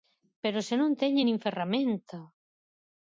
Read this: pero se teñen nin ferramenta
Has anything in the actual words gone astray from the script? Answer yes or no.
yes